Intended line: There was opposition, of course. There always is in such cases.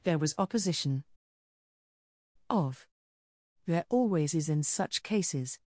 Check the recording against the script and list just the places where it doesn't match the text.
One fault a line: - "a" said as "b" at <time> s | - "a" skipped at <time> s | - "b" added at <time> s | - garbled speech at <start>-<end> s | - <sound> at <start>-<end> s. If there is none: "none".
- "course" skipped at 2.9 s